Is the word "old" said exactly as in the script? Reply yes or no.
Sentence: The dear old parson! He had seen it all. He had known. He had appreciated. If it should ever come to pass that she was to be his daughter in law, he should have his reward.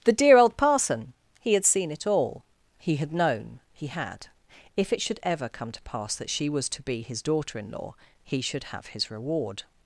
yes